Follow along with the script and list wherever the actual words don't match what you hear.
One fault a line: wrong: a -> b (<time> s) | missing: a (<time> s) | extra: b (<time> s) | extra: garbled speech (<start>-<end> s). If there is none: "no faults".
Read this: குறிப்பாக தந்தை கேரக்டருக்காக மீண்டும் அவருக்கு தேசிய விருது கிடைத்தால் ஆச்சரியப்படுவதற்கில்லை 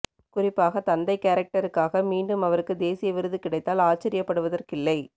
no faults